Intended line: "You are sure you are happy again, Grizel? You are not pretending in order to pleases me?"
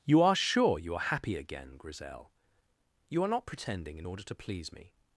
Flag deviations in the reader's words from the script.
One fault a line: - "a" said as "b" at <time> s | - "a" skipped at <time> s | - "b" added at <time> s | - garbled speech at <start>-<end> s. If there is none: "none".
- "pleases" said as "please" at 4.4 s